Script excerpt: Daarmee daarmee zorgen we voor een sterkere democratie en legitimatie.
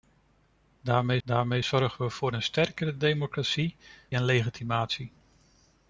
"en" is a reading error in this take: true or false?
false